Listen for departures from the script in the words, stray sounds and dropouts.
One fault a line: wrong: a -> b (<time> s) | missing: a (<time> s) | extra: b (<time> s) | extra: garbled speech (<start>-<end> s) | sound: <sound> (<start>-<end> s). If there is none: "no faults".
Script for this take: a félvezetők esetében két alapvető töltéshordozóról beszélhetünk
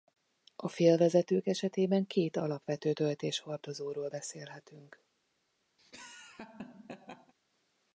sound: laugh (5.8-7.3 s)